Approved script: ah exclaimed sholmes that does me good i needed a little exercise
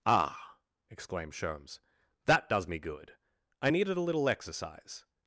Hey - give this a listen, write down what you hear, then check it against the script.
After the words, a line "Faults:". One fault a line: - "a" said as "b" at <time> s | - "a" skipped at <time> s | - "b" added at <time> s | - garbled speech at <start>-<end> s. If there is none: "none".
ah exclaimed sholmes that does me good i needed a little exercise
Faults:
none